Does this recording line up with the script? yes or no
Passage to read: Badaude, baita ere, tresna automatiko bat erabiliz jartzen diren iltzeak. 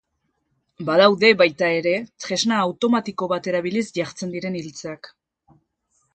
yes